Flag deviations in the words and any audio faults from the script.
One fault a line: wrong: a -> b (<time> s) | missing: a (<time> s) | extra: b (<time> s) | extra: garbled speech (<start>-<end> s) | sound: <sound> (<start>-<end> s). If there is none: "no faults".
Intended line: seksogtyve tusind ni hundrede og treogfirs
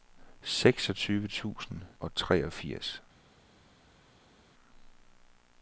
missing: ni hundrede (1.8 s)